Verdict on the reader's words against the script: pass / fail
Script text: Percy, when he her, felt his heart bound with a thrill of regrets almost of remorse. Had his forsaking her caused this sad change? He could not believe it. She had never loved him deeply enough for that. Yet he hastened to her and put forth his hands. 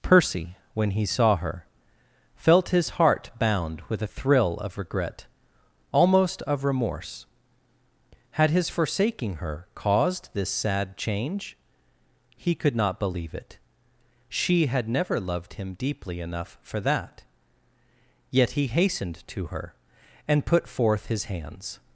fail